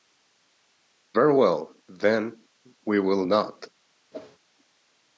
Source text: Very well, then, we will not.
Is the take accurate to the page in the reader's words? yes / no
yes